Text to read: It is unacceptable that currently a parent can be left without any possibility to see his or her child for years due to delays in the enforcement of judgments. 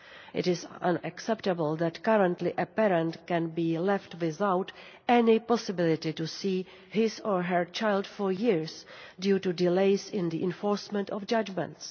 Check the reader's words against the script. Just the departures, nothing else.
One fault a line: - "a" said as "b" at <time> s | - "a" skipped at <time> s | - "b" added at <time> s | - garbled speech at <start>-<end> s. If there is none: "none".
none